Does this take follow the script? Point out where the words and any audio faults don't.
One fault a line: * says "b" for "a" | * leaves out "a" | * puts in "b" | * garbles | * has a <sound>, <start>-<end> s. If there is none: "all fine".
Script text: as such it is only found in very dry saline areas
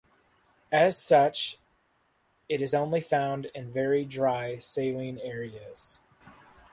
all fine